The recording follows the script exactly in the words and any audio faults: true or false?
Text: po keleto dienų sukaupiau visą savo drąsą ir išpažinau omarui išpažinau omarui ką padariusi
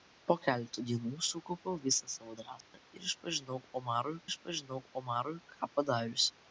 false